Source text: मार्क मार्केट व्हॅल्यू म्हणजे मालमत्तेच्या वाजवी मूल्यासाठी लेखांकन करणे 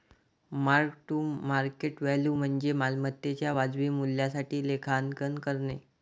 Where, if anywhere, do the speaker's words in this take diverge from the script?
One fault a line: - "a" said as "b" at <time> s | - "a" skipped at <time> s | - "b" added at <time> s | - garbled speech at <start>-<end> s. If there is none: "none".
- "टू" added at 1.1 s